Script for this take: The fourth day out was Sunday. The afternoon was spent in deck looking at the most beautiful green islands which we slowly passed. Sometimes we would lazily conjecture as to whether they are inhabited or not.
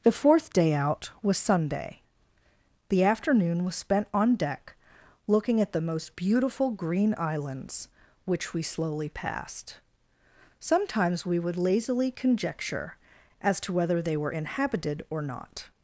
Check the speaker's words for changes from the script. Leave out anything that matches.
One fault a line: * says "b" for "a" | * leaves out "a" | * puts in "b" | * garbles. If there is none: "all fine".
* says "on" for "in"
* says "were" for "are"